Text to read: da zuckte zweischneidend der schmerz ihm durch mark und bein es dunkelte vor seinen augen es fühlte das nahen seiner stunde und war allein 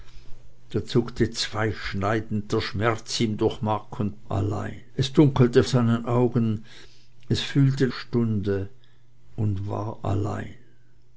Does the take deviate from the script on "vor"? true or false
true